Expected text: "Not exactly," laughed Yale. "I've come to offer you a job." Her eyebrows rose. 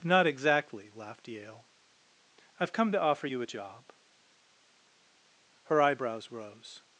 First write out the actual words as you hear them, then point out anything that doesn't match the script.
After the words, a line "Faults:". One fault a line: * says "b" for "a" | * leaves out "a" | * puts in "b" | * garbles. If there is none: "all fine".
"Not exactly," laughed Yale. "I've come to offer you a job." Her eyebrows rose.
Faults:
all fine